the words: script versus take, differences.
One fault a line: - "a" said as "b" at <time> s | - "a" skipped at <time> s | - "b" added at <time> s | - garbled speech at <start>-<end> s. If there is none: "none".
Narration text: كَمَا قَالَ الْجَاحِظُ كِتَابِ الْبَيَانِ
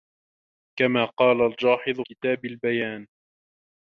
none